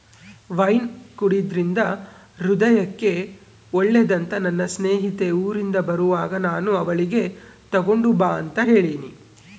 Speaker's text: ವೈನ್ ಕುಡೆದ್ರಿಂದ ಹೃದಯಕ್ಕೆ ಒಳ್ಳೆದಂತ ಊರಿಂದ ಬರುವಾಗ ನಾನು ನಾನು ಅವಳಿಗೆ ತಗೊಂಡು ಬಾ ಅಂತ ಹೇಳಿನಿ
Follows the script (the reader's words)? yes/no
no